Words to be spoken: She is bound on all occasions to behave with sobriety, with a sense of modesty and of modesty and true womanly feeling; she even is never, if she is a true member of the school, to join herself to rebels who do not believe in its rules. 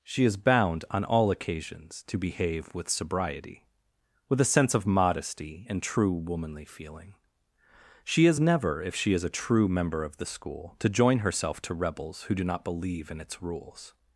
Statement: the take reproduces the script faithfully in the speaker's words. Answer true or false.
false